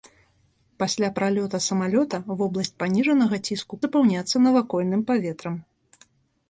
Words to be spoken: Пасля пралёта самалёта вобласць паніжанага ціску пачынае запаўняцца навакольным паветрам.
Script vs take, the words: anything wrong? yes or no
yes